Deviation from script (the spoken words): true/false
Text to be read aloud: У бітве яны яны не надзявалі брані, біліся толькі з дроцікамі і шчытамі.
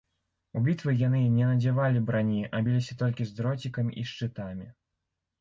true